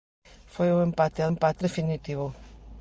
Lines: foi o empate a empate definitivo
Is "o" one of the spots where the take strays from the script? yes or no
no